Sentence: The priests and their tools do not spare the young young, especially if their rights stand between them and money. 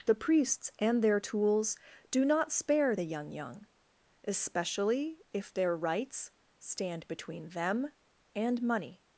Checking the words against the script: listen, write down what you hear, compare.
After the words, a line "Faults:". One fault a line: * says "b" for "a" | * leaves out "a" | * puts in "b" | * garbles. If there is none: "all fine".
The priests and their tools do not spare the young young, especially if their rights stand between them and money.
Faults:
all fine